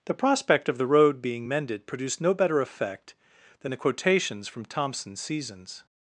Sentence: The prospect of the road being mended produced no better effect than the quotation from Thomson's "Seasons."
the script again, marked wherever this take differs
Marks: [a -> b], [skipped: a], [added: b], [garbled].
The prospect of the road being mended produced no better effect than the [quotation -> quotations] from Thomson's "Seasons."